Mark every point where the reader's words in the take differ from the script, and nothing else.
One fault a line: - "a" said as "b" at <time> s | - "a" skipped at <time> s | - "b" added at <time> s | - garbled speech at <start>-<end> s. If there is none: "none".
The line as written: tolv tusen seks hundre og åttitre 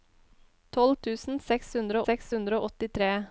- "seks hundre" added at 2.1 s